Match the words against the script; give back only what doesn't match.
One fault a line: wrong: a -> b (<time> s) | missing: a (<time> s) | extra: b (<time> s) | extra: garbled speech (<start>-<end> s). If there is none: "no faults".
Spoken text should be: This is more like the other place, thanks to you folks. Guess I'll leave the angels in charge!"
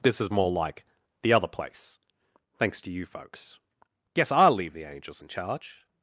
no faults